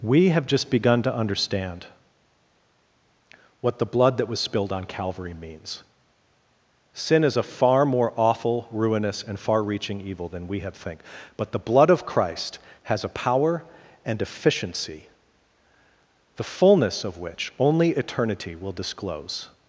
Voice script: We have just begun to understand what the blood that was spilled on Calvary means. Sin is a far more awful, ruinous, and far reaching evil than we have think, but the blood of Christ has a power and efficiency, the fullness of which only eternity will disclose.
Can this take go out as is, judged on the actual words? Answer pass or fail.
pass